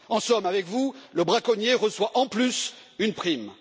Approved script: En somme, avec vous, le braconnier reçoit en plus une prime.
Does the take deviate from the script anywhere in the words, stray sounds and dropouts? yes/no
no